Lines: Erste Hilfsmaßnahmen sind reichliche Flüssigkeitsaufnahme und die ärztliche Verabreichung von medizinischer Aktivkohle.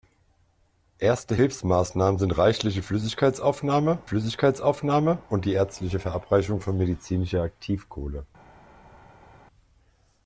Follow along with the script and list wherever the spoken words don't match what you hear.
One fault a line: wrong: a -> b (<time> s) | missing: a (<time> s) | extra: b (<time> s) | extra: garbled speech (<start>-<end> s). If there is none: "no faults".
extra: Flüssigkeitsaufnahme (4.0 s)